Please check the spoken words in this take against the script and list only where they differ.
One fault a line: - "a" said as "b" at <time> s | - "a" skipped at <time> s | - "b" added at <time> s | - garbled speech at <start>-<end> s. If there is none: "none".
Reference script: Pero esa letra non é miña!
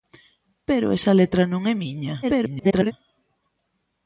- garbled speech at 2.2-2.9 s